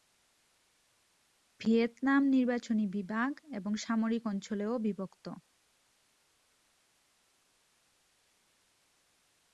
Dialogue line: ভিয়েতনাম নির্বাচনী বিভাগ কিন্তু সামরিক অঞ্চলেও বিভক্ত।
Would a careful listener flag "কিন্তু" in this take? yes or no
yes